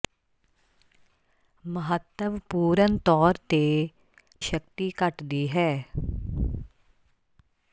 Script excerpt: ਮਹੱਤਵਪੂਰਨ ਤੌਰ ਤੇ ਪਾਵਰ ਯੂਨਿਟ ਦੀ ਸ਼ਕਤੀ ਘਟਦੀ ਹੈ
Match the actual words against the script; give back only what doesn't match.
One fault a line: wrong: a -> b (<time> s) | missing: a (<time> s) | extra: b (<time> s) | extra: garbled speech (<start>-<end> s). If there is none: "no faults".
missing: ਪਾਵਰ ਯੂਨਿਟ ਦੀ (3.6 s)